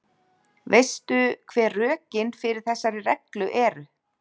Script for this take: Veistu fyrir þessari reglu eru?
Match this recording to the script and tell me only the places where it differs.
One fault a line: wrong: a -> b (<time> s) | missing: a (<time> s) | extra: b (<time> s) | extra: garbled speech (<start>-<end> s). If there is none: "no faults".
extra: hver rökin (1.5 s)